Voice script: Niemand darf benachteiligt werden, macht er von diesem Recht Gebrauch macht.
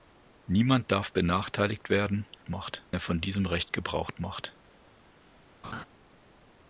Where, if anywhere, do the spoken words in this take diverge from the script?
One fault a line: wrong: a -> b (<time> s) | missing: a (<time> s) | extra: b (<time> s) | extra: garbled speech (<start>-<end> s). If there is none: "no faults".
no faults